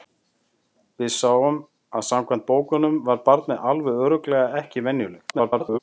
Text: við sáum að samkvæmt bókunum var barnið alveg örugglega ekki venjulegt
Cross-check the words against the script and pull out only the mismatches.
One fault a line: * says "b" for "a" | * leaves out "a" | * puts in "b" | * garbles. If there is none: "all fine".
* garbles